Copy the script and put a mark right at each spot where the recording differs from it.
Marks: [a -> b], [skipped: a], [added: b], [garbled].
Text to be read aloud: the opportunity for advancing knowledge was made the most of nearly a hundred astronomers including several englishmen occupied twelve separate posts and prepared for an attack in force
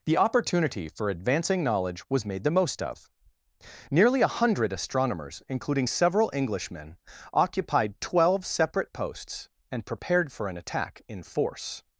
the opportunity for advancing knowledge was made the most of nearly a hundred astronomers including several englishmen occupied twelve separate posts and prepared for an attack in force